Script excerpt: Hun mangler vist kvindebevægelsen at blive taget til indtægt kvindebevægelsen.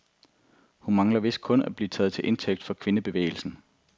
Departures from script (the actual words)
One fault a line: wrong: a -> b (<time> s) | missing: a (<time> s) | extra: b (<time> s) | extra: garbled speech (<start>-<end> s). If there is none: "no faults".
wrong: kvindebevægelsen -> kun (1.4 s)
extra: for (2.6 s)